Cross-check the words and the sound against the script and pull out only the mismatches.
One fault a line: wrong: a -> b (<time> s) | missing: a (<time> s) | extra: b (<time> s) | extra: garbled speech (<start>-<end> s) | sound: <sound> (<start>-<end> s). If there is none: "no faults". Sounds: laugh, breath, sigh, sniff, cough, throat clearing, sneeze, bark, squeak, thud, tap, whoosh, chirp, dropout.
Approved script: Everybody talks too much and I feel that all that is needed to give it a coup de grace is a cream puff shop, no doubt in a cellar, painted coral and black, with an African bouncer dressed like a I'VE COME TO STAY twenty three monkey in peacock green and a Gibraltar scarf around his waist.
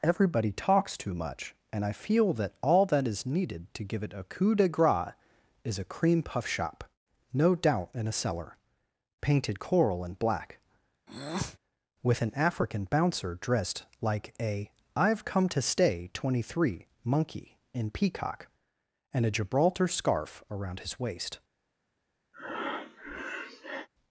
sound: breath (11.1-11.6 s)
missing: green (18.5 s)
sound: breath (22.3-23.9 s)